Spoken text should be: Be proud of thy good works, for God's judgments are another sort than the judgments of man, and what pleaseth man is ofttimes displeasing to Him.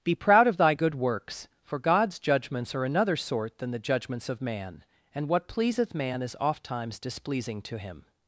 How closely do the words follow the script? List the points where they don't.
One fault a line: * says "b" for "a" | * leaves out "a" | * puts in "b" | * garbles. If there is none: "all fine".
all fine